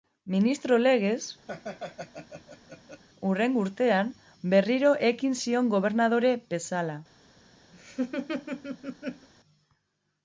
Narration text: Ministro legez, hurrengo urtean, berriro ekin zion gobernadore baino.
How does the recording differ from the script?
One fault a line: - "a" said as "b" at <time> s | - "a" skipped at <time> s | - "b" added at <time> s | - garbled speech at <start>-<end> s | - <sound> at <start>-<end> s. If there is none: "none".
- laugh at 1.5-3.0 s
- "baino" said as "bezala" at 6.6 s
- laugh at 7.7-9.3 s